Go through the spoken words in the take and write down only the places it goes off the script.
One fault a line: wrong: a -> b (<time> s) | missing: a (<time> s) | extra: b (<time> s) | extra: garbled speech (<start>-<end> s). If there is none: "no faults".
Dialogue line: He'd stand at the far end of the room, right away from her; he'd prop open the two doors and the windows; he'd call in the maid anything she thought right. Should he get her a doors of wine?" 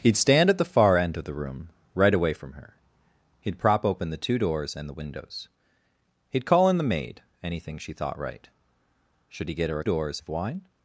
no faults